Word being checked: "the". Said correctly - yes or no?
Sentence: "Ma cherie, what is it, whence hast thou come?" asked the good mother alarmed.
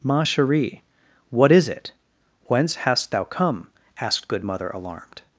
no